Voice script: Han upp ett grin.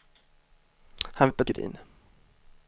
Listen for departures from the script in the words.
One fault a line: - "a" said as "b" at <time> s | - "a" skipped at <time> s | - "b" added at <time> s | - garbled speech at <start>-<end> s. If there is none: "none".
none